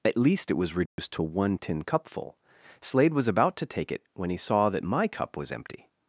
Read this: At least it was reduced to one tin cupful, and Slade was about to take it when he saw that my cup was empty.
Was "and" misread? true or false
true